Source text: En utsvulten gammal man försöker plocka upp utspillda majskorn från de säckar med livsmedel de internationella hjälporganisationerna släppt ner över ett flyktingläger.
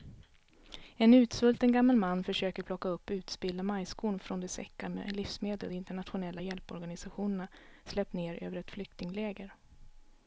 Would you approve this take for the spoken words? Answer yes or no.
yes